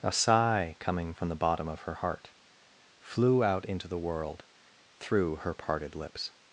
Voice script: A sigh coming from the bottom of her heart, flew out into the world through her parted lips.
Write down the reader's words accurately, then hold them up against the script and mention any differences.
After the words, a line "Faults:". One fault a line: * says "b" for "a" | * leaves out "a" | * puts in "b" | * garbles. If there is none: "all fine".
A sigh coming from the bottom of her heart, flew out into the world through her parted lips.
Faults:
all fine